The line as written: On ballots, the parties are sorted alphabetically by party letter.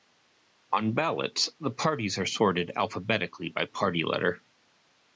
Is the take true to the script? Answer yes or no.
yes